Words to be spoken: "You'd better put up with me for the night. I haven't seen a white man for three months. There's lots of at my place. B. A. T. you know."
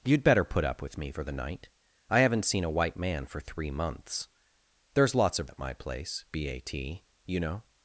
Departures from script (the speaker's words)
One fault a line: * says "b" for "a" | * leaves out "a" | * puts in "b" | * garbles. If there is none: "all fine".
all fine